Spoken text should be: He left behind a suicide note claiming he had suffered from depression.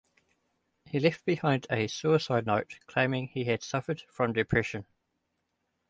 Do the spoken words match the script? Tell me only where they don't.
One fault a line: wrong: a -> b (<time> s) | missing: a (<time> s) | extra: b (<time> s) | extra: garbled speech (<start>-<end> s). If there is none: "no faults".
no faults